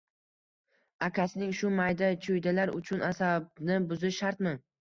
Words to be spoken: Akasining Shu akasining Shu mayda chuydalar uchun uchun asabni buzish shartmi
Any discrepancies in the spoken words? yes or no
yes